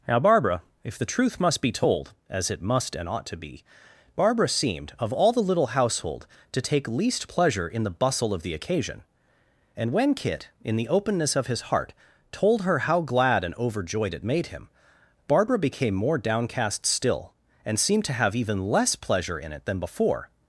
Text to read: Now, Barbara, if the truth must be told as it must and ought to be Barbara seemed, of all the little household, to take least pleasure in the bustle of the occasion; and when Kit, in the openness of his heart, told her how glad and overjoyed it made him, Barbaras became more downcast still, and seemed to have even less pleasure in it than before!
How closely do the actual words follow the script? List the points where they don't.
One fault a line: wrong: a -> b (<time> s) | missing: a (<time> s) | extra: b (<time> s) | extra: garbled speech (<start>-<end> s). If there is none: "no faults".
wrong: Barbaras -> Barbara (15.3 s)